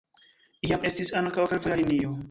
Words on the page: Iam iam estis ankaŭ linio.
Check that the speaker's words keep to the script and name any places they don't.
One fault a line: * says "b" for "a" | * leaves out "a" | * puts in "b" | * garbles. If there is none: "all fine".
* leaves out "iam"
* puts in "fervoja"